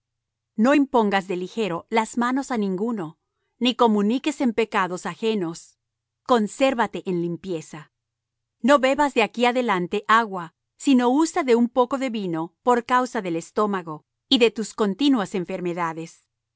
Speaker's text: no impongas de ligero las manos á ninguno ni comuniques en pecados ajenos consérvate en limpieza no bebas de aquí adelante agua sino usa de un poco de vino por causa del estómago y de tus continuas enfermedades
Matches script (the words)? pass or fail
pass